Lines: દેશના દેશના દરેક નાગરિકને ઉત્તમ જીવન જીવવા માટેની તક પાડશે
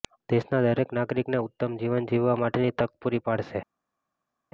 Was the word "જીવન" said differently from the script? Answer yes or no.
no